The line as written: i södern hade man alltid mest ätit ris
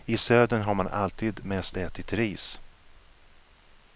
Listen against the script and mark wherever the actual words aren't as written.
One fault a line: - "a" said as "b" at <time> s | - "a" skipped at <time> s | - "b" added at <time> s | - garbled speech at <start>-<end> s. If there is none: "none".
- "hade" said as "har" at 0.6 s